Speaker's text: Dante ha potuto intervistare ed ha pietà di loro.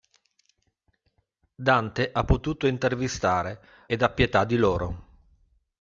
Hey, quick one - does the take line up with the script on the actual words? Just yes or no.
yes